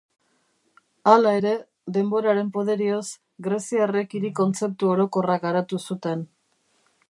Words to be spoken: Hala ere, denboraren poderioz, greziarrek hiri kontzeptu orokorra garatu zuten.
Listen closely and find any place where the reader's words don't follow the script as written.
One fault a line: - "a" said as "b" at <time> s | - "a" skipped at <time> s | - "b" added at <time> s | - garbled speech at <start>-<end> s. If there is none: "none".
none